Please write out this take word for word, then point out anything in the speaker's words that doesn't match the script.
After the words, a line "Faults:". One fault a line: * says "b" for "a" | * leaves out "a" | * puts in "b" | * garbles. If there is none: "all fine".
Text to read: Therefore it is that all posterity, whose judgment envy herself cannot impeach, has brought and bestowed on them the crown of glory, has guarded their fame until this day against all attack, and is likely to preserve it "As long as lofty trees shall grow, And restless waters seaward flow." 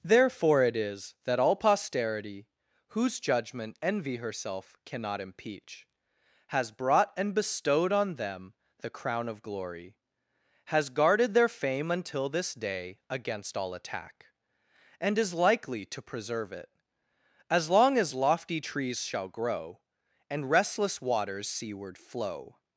Therefore it is that all posterity, whose judgment envy herself cannot impeach, has brought and bestowed on them the crown of glory, has guarded their fame until this day against all attack, and is likely to preserve it "As long as lofty trees shall grow, And restless waters seaward flow."
Faults:
all fine